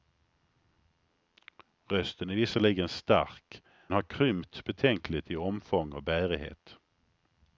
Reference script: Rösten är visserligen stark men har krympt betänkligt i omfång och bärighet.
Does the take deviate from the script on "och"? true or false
false